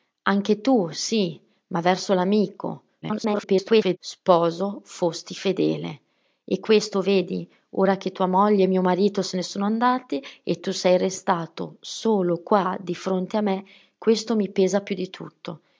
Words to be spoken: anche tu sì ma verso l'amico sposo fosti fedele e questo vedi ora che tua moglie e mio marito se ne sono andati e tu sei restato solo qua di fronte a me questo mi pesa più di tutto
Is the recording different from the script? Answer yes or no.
yes